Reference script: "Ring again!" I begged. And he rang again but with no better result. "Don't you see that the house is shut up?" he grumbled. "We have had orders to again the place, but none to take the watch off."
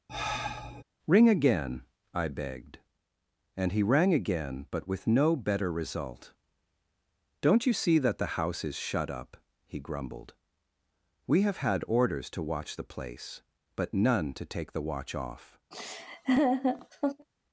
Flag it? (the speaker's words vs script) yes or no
yes